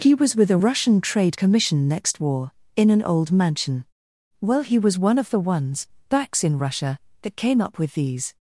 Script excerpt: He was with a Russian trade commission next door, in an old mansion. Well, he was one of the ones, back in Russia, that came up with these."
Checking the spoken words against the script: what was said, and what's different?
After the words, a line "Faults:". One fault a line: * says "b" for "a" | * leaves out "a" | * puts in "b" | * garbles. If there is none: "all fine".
He was with a Russian trade commission next war, in an old mansion. Well, he was one of the ones, backs in Russia, that came up with these."
Faults:
* says "war" for "door"
* says "backs" for "back"